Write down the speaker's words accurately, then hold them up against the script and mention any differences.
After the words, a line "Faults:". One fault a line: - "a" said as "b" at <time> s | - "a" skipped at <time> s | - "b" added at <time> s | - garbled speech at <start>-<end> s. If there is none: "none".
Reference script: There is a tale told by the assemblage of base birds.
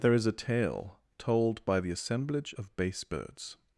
There is a tale told by the assemblage of base birds.
Faults:
none